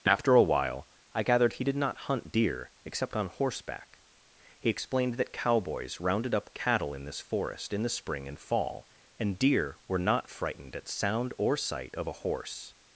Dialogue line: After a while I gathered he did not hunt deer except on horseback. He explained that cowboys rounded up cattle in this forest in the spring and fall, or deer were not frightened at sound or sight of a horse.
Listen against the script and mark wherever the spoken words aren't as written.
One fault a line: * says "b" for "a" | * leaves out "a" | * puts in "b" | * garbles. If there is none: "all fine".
* says "and" for "or"